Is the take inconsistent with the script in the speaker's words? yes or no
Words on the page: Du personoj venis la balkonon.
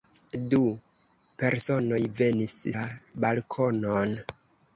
no